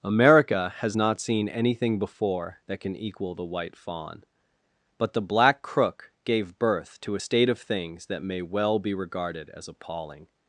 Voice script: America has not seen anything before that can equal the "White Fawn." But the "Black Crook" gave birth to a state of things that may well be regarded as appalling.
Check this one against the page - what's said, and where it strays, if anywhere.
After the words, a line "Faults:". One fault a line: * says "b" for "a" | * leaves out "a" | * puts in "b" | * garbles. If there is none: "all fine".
America has not seen anything before that can equal the "White Fawn." But the "Black Crook" gave birth to a state of things that may well be regarded as appalling.
Faults:
all fine